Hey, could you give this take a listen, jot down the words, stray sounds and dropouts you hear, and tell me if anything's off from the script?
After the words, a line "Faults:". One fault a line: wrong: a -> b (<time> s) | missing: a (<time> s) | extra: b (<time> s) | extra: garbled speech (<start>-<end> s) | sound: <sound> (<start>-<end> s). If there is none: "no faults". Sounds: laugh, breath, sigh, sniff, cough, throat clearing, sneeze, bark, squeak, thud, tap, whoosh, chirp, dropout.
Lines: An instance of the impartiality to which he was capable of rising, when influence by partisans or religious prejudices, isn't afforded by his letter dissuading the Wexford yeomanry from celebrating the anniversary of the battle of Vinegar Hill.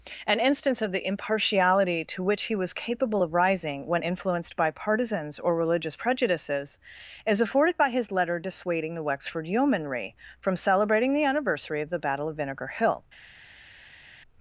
An instance of the impartiality to which he was capable of rising, when influenced by partisans or religious prejudices, is afforded by his letter dissuading the Wexford yeomanry from celebrating the anniversary of the battle of Vinegar Hill.
Faults:
wrong: influence -> influenced (4.0 s)
wrong: isn't -> is (7.2 s)